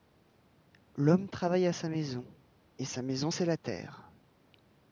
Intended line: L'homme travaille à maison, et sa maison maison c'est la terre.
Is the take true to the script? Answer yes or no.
no